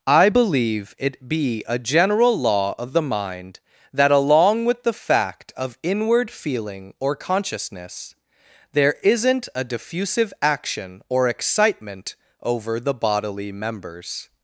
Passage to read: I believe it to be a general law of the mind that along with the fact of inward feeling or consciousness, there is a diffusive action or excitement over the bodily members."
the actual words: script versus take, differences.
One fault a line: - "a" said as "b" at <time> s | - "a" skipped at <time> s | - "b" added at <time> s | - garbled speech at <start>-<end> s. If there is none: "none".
- "to" skipped at 1.3 s
- "is" said as "isn't" at 9.0 s